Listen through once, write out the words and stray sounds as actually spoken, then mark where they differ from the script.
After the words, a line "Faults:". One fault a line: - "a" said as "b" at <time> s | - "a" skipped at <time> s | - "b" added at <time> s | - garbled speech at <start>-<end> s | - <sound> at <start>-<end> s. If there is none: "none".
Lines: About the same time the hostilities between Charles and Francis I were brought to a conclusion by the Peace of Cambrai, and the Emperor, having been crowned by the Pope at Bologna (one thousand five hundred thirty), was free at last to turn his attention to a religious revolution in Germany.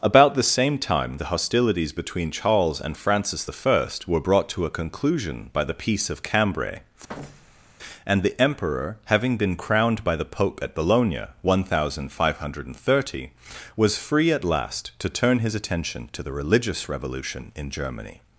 About the same time the hostilities between Charles and Francis I were brought to a conclusion by the Peace of Cambrai, and the Emperor, having been crowned by the Pope at Bologna (one thousand five hundred thirty), was free at last to turn his attention to the religious revolution in Germany.
Faults:
- thud at 7.1-7.7 s
- "a" said as "the" at 16.2 s